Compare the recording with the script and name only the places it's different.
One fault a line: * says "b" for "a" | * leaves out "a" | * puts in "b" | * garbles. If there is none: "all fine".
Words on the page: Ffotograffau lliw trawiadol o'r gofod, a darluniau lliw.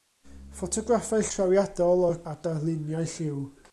* leaves out "lliw"
* leaves out "gofod"